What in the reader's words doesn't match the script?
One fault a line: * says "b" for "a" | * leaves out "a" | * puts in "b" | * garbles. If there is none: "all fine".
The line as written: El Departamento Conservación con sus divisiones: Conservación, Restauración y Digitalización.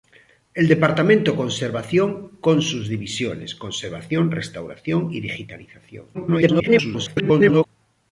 * garbles